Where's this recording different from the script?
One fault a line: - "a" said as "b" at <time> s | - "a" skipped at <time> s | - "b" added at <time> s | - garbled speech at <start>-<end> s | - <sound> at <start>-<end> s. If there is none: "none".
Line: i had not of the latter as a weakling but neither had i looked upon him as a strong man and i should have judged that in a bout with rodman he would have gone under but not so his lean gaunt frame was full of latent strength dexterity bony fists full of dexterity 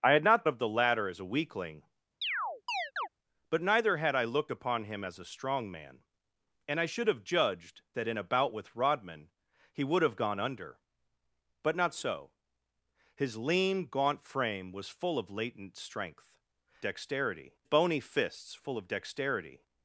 - chirp at 2.2-3.1 s